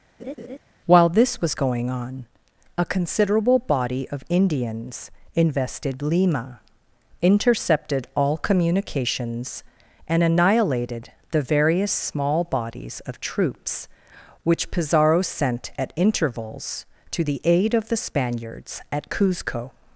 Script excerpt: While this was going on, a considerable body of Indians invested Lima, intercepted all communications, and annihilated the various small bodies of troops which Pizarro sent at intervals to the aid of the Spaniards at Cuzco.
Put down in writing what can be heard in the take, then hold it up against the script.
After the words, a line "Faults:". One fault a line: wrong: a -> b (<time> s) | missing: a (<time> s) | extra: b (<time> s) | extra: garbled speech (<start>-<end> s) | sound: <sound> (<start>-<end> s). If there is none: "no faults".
While this was going on, a considerable body of Indians invested Lima, intercepted all communications, and annihilated the various small bodies of troops which Pizarro sent at intervals to the aid of the Spaniards at Cuzco.
Faults:
sound: laugh (0.2-0.6 s)